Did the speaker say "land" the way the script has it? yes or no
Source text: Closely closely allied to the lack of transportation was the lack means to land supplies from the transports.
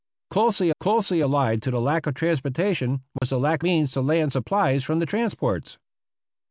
yes